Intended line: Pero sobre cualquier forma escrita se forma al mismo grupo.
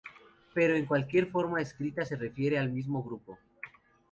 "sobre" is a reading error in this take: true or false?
true